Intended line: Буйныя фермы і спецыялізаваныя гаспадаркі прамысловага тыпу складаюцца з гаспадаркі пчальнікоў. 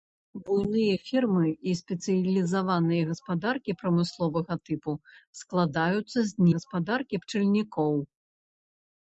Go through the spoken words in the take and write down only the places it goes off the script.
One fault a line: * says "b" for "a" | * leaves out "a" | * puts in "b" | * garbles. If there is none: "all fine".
all fine